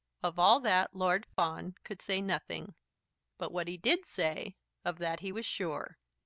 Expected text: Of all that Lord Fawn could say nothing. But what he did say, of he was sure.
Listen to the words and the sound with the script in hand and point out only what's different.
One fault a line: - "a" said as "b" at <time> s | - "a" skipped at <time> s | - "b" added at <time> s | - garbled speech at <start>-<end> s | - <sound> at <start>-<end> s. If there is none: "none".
- "that" added at 5.0 s